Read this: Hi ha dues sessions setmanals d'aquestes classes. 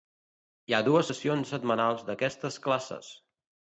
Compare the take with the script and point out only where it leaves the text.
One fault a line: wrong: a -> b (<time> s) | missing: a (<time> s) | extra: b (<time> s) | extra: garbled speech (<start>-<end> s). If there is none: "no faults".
no faults